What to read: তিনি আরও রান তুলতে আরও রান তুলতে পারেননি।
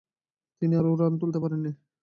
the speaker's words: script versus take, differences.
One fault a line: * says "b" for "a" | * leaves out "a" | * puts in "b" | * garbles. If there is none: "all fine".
* leaves out "আরও রান তুলতে"